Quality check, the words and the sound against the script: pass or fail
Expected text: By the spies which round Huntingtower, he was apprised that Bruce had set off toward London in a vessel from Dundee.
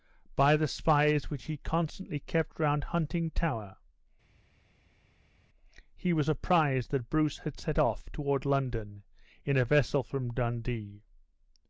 fail